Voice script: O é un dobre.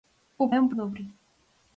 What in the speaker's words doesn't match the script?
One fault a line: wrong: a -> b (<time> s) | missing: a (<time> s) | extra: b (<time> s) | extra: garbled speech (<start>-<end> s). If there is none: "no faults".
no faults